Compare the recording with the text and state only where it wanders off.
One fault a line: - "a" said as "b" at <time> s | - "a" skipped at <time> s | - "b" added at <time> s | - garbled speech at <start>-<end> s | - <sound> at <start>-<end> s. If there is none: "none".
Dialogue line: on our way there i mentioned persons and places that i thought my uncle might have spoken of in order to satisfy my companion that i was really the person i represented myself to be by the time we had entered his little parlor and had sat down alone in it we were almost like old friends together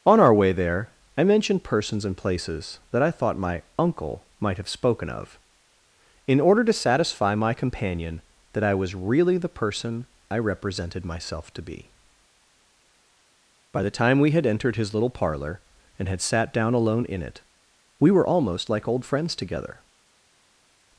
none